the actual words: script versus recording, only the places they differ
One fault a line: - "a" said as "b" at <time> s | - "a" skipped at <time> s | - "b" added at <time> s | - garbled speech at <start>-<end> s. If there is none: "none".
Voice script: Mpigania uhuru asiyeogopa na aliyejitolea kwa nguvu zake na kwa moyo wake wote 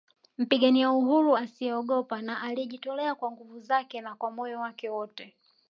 none